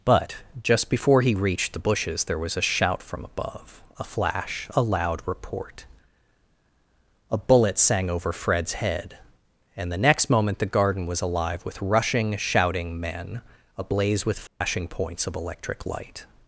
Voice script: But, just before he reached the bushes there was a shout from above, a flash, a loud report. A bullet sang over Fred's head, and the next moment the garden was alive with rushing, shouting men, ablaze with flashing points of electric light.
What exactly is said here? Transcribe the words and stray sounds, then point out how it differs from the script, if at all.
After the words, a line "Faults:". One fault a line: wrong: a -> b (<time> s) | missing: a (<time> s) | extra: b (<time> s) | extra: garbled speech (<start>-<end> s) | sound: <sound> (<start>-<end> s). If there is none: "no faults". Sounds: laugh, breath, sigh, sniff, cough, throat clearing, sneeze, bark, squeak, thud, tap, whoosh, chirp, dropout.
But, just before he reached the bushes there was a shout from above, a flash, a loud report. A bullet sang over Fred's head, and the next moment the garden was alive with rushing, shouting men, ablaze with flashing points of electric light.
Faults:
sound: dropout (14.5-14.6 s)